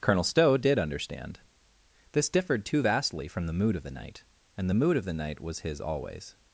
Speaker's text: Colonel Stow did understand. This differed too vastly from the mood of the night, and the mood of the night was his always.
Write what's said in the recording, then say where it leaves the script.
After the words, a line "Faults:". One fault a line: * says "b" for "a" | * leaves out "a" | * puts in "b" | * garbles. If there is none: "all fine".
Colonel Stow did understand. This differed too vastly from the mood of the night, and the mood of the night was his always.
Faults:
all fine